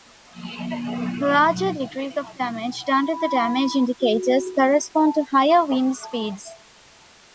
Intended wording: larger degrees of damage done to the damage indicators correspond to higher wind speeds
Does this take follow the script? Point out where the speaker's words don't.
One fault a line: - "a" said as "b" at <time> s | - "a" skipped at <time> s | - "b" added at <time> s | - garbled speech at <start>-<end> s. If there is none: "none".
none